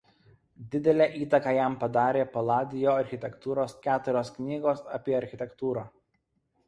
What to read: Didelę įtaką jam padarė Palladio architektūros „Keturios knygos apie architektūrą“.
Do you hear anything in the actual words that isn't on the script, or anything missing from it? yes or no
no